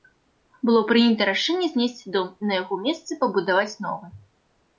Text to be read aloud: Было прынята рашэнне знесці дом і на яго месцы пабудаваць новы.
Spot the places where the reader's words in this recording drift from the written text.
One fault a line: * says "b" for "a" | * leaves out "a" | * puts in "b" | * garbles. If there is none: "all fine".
all fine